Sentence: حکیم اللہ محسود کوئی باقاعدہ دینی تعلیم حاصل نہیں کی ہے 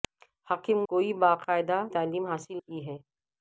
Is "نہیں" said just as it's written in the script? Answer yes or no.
no